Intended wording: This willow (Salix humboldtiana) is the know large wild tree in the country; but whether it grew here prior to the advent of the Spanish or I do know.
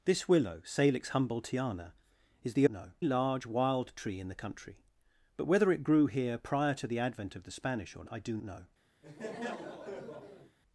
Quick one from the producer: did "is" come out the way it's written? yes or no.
yes